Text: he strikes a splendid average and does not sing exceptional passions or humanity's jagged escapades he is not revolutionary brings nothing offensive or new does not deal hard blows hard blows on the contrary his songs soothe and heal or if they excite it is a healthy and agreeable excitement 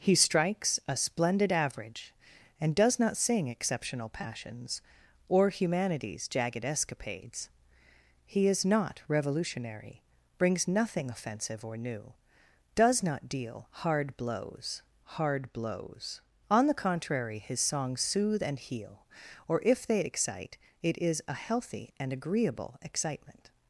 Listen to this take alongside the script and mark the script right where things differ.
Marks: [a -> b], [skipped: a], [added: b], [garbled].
he strikes a splendid average and does not sing exceptional passions or humanity's jagged escapades he is not revolutionary brings nothing offensive or new does not deal hard blows hard blows on the contrary his songs soothe and heal or if they excite it is a healthy and agreeable excitement